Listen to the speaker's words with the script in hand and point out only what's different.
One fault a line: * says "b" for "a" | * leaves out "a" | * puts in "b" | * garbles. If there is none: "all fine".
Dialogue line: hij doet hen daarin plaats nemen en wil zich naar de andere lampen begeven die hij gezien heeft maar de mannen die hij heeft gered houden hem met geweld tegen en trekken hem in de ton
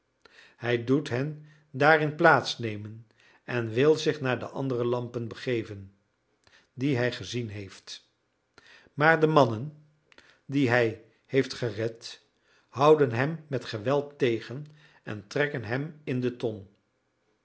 all fine